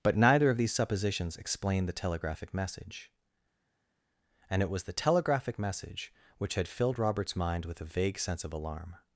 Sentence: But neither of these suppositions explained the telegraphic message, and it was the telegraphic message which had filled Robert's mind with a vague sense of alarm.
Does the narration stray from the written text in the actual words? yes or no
no